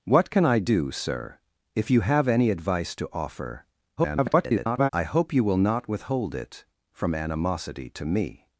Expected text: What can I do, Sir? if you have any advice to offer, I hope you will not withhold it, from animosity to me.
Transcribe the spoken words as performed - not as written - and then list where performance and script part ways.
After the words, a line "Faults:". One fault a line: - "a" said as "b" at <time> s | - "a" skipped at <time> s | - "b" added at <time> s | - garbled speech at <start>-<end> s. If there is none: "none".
What can I do, Sir? if you have any advice to offer, [garbled] I hope you will not withhold it, from animosity to me.
Faults:
- garbled speech at 4.0-4.9 s